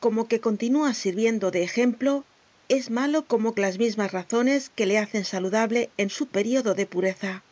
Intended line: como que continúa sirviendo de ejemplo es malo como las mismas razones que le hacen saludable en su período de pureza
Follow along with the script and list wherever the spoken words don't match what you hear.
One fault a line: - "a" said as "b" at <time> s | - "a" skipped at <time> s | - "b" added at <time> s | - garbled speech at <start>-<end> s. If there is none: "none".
none